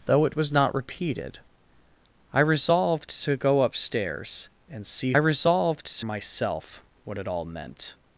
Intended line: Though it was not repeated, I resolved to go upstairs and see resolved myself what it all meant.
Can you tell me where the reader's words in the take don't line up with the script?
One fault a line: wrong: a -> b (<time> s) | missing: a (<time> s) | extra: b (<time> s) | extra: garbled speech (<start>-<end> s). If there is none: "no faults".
no faults